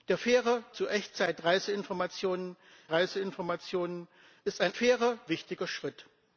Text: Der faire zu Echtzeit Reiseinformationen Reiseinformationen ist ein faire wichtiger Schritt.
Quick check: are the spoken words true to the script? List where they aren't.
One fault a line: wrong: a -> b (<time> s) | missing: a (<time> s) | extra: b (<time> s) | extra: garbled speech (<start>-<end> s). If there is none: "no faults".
no faults